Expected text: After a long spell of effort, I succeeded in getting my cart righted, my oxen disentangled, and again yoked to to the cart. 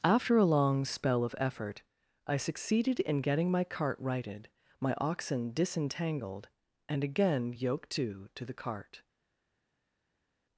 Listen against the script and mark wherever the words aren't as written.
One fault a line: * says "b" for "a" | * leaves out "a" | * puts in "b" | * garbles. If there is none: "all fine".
all fine